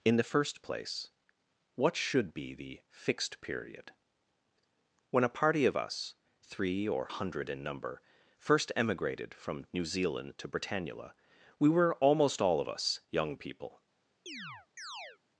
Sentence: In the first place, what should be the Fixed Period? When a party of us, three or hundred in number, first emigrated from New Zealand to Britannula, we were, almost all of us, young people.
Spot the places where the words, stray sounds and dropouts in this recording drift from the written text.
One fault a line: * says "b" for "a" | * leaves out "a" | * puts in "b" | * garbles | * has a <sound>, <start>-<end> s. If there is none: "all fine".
* has a chirp, 14.3-15.2 s